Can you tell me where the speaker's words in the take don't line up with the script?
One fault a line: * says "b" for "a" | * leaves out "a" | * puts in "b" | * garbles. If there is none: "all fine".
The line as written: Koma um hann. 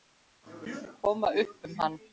* puts in "upp"